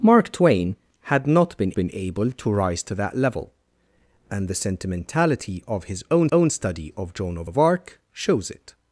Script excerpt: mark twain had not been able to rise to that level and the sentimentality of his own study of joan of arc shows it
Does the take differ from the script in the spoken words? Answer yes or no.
yes